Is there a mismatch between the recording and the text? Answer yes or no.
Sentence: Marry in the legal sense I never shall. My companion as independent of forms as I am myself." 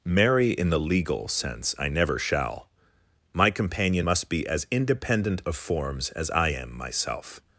yes